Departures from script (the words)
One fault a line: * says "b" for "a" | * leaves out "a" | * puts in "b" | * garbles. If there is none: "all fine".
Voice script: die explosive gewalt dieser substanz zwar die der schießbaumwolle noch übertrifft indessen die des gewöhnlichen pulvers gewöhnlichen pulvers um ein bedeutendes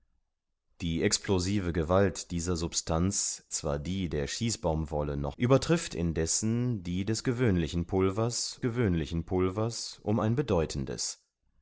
all fine